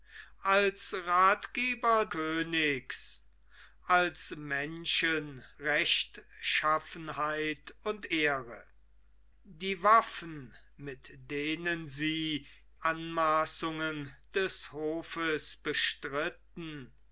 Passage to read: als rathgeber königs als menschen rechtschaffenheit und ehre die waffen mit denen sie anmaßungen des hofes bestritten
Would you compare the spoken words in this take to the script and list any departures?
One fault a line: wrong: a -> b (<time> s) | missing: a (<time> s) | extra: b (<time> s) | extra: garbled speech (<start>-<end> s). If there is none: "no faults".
no faults